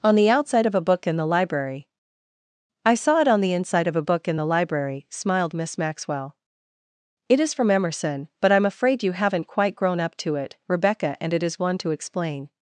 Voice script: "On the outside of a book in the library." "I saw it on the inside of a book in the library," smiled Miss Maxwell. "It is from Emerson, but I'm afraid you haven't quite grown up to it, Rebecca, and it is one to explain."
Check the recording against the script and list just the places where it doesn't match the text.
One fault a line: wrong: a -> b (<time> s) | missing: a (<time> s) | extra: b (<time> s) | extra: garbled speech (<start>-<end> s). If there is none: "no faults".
no faults